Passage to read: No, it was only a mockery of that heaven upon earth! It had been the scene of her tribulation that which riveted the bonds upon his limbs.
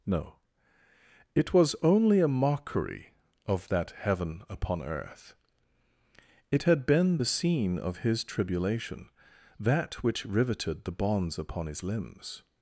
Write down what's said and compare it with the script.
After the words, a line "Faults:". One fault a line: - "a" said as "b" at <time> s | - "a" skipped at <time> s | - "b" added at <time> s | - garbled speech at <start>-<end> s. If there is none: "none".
No, it was only a mockery of that heaven upon earth! It had been the scene of his tribulation that which riveted the bonds upon his limbs.
Faults:
- "her" said as "his" at 8.0 s